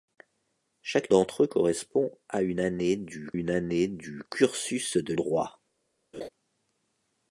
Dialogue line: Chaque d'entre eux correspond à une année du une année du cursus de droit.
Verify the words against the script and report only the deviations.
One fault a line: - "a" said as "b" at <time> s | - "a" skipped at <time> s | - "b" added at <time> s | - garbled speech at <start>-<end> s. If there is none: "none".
none